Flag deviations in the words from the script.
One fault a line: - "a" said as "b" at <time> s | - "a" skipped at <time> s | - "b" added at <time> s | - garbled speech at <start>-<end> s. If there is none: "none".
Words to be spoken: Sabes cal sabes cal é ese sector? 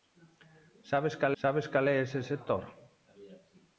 none